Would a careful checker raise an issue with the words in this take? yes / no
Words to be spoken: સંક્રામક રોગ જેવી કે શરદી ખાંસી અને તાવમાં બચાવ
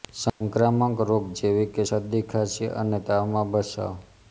no